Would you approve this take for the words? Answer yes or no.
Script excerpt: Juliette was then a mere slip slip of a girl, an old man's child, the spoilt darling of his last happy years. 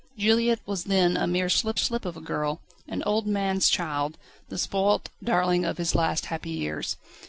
yes